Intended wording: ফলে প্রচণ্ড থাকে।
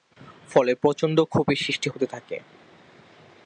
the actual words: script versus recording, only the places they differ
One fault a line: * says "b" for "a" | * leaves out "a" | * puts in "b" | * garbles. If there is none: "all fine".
* puts in "ক্ষোভের সৃষ্টি হতে"